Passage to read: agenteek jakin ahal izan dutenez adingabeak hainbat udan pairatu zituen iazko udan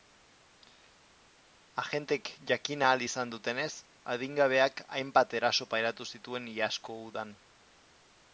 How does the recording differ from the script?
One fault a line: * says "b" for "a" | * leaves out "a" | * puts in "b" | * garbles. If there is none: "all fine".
* says "eraso" for "udan"